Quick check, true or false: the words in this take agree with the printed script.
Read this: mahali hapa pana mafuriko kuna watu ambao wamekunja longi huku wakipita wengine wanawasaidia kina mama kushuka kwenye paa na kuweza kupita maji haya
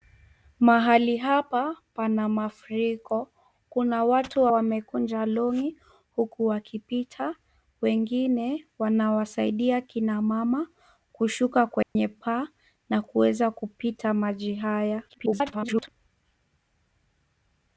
false